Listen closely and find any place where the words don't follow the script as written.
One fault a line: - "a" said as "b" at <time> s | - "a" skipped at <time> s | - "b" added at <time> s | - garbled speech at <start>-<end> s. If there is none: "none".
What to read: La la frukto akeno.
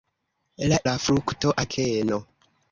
none